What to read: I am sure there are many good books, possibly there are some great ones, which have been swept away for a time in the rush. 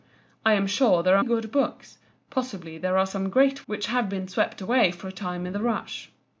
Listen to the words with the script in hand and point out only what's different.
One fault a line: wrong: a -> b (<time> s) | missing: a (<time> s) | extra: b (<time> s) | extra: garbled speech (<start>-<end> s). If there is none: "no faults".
missing: many (1.2 s)
missing: ones (3.7 s)